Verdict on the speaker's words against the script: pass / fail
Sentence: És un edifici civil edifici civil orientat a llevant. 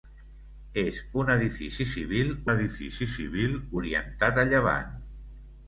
pass